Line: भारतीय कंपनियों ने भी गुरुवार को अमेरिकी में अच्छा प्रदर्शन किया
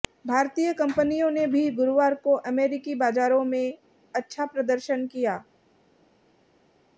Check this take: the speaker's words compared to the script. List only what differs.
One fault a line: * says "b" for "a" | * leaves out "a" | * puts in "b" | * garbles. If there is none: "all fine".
* puts in "बाजारों"